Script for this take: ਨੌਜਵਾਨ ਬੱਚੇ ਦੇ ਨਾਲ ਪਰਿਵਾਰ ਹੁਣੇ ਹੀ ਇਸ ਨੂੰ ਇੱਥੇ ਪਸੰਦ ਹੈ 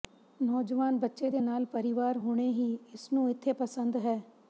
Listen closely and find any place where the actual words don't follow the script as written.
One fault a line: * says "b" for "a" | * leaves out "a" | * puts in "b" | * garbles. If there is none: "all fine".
all fine